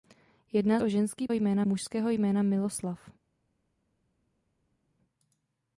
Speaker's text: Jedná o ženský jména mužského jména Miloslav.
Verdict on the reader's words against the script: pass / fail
pass